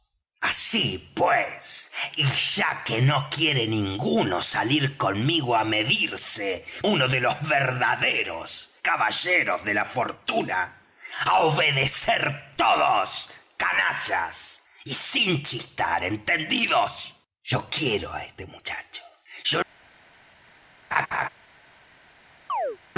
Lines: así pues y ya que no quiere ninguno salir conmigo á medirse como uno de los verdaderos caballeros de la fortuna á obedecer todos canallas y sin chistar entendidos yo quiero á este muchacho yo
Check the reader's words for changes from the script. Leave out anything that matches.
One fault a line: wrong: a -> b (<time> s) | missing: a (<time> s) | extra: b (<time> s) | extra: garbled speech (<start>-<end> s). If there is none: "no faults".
missing: como (6.7 s)